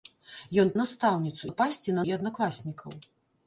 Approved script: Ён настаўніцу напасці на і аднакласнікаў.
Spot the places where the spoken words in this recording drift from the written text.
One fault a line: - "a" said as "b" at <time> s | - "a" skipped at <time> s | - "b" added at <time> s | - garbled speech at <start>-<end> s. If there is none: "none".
none